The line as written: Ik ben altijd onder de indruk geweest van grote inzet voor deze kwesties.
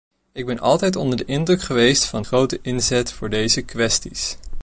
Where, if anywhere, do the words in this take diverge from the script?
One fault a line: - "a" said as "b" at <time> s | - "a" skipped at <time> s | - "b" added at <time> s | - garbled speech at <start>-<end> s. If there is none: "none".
none